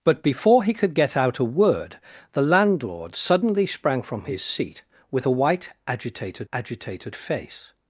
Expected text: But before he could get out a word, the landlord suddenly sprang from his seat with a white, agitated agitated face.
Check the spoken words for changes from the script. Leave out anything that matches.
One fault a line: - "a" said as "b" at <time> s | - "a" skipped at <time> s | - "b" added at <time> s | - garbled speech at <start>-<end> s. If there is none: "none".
none